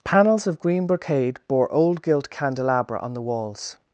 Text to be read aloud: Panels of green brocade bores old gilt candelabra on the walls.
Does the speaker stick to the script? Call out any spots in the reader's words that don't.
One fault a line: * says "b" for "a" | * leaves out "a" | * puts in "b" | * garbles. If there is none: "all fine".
* says "bore" for "bores"